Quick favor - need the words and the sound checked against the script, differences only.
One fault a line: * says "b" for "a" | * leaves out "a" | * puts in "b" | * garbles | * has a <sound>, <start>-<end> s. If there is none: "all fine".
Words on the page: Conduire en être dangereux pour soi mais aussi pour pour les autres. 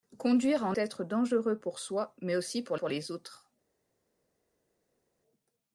all fine